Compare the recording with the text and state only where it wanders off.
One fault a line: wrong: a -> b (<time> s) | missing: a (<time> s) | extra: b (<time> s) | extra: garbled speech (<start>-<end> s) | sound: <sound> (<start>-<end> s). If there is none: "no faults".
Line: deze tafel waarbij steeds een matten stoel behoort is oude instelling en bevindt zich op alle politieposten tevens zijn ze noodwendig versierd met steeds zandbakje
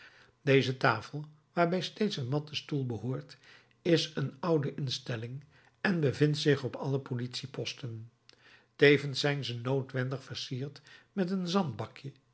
extra: een (4.2 s)
wrong: steeds -> een (11.3 s)